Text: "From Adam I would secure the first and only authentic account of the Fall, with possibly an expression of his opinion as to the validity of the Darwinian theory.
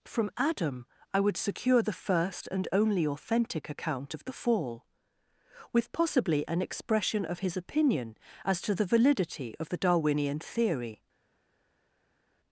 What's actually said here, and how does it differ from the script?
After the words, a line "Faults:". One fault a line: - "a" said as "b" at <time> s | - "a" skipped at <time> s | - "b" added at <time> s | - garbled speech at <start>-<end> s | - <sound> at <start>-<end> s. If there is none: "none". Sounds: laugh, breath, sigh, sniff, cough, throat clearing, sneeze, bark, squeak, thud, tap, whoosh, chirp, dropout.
"From Adam I would secure the first and only authentic account of the Fall, with possibly an expression of his opinion as to the validity of the Darwinian theory.
Faults:
none